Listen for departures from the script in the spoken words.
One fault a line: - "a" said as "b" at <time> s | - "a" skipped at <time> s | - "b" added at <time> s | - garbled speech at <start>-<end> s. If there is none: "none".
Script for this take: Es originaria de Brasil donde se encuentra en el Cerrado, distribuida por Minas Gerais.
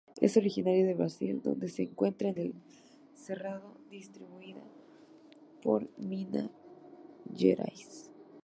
none